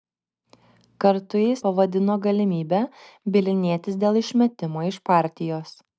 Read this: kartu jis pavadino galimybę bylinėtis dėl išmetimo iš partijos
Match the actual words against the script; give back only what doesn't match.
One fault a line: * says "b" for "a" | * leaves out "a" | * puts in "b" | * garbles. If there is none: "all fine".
all fine